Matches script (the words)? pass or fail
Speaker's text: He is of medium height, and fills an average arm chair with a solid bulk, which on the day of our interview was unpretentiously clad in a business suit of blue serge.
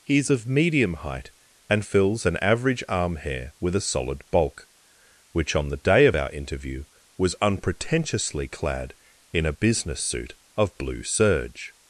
fail